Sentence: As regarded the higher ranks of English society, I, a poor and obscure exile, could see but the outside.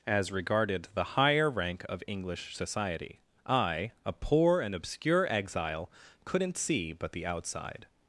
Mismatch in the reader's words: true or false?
true